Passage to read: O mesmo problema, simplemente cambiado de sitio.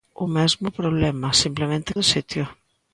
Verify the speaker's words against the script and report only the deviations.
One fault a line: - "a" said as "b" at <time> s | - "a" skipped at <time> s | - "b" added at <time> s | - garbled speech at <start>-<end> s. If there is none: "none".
- "cambiado" skipped at 1.9 s